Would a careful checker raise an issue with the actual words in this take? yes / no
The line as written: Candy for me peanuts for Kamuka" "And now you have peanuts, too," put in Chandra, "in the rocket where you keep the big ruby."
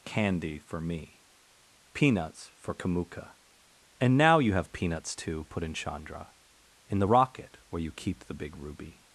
no